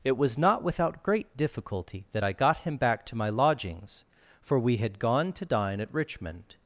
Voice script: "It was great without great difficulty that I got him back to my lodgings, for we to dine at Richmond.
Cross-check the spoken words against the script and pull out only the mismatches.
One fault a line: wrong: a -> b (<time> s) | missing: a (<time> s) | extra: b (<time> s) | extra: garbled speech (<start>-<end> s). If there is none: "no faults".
wrong: great -> not (0.4 s)
extra: had gone (4.8 s)